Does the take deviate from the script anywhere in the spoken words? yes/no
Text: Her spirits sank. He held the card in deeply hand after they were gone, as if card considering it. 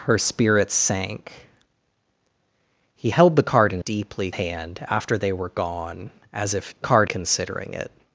no